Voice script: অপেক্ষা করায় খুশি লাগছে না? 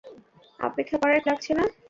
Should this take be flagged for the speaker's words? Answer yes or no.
yes